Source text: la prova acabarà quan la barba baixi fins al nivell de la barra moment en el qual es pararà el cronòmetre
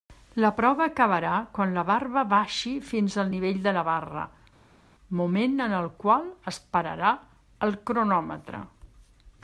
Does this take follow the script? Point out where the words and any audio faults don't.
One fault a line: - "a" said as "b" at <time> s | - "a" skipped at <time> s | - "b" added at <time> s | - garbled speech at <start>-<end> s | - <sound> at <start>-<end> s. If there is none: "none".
none